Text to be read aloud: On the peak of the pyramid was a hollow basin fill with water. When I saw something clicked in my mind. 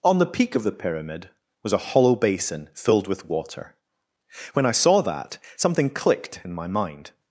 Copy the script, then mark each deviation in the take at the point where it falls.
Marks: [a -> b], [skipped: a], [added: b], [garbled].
On the peak of the pyramid was a hollow basin [fill -> filled] with water. When I saw [added: that] something clicked in my mind.